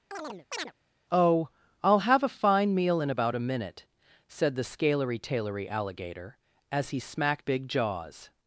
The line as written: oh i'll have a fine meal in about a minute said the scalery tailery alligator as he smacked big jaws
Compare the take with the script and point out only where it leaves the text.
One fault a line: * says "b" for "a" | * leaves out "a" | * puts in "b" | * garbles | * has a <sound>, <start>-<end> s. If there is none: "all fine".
* has a chirp, 0.1-0.7 s